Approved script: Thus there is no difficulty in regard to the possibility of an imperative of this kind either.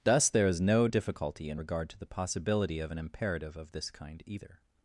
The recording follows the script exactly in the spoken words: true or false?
true